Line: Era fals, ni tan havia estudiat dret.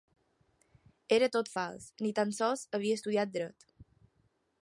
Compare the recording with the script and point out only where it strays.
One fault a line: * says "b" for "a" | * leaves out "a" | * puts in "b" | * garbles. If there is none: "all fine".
* puts in "tot"
* puts in "sols"